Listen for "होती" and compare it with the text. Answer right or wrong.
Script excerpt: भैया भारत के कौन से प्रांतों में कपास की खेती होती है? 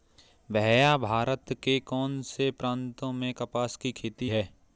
wrong